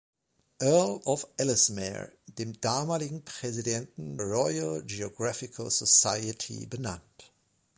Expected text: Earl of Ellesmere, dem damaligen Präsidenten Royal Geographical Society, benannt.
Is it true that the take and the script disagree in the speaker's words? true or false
false